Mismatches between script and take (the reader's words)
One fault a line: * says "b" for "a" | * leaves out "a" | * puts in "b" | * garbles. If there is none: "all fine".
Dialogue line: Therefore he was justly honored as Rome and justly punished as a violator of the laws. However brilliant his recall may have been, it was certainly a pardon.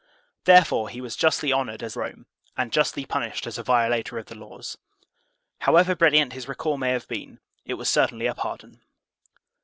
all fine